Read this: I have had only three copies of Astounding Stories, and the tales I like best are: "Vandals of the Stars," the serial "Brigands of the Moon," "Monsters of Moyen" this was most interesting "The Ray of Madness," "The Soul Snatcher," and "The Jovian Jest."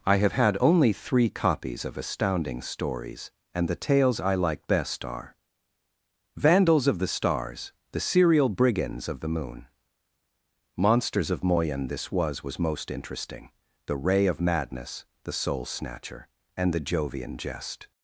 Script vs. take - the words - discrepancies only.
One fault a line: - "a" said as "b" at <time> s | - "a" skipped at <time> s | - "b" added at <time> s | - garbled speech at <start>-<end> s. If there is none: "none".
- "was" added at 12.4 s